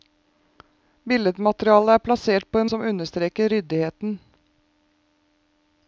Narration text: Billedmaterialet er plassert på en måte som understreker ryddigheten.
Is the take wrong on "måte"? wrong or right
wrong